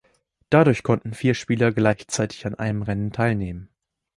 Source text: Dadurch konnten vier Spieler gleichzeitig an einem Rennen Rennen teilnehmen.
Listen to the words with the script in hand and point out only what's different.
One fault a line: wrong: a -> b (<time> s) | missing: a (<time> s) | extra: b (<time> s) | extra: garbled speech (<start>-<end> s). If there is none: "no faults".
missing: Rennen (3.1 s)